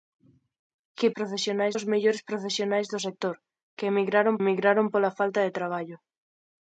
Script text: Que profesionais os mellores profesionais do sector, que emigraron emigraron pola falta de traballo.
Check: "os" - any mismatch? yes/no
no